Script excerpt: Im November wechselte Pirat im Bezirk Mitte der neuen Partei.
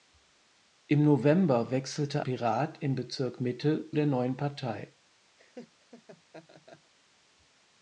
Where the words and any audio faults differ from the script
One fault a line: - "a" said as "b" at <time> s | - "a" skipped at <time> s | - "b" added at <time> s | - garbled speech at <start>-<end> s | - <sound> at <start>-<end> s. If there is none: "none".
- laugh at 5.4-6.9 s